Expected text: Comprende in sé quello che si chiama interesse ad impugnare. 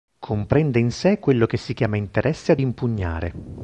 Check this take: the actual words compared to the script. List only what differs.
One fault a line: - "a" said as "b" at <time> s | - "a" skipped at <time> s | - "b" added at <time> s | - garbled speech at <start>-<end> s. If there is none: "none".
none